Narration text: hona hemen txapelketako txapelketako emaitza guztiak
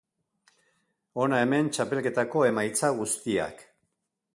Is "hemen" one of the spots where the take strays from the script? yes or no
no